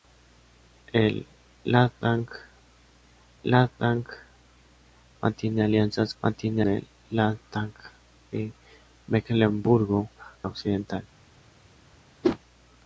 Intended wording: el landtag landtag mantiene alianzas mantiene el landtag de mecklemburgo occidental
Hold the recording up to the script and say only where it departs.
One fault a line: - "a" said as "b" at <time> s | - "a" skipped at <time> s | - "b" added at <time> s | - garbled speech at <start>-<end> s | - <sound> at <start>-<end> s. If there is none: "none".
- whoosh at 12.2-12.4 s